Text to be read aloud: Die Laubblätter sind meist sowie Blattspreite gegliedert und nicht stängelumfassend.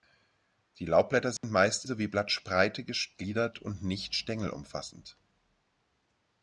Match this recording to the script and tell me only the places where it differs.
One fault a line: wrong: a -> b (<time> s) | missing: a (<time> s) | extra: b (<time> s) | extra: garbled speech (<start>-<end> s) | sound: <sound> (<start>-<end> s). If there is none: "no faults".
sound: dropout (1.4-1.4 s)